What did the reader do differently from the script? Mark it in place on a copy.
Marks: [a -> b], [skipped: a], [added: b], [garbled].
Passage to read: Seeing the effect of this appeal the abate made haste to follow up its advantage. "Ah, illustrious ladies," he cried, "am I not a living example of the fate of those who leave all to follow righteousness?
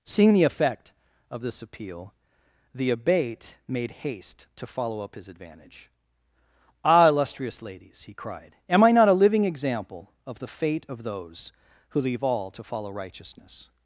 Seeing the effect of this appeal the abate made haste to follow up [its -> his] advantage. "Ah, illustrious ladies," he cried, "am I not a living example of the fate of those who leave all to follow righteousness?